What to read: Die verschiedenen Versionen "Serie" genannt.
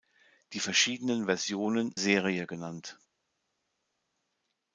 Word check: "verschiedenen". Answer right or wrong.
right